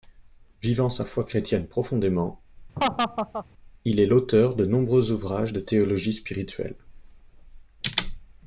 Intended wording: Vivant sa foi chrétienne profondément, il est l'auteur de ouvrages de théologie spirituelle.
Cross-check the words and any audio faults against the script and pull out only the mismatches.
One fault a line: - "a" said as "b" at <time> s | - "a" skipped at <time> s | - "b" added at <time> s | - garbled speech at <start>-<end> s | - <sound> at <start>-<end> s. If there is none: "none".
- laugh at 2.8-3.5 s
- "nombreux" added at 4.7 s